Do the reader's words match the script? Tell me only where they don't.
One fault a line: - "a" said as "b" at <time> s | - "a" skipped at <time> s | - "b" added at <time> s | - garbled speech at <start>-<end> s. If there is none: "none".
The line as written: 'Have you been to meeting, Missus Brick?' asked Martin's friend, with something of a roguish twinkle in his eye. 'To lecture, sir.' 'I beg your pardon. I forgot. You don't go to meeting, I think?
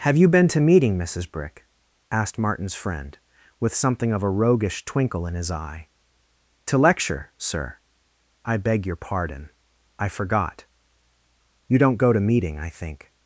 none